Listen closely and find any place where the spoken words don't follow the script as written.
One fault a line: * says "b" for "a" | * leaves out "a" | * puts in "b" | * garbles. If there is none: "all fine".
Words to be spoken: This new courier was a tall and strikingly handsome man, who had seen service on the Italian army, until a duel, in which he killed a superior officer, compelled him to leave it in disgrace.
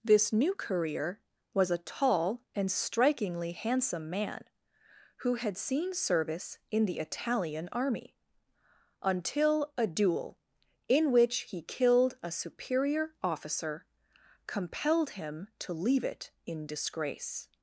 * says "in" for "on"